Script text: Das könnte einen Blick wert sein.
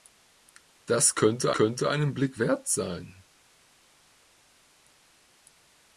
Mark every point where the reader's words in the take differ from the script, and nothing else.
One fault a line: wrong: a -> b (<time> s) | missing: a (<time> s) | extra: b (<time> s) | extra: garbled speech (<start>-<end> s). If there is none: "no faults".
extra: könnte (1.5 s)